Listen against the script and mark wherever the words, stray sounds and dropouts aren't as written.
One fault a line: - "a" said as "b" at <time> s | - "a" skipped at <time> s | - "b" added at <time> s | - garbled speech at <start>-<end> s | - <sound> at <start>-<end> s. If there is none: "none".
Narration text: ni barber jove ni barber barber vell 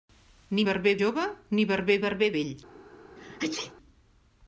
- sneeze at 3.2-3.7 s